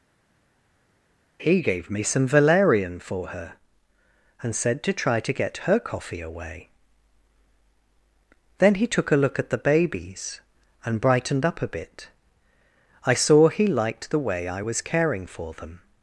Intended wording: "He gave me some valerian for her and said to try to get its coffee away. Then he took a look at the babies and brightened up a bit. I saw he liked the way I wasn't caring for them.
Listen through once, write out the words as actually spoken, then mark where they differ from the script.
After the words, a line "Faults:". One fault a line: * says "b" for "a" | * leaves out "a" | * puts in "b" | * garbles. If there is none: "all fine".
"He gave me some valerian for her and said to try to get her coffee away. Then he took a look at the babies and brightened up a bit. I saw he liked the way I was caring for them.
Faults:
* says "her" for "its"
* says "was" for "wasn't"